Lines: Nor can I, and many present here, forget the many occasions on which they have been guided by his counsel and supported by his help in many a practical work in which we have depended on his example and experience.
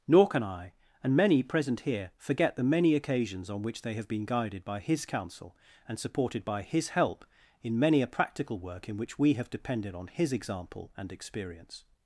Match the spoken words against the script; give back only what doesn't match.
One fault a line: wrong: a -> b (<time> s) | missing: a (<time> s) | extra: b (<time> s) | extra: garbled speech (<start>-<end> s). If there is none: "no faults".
no faults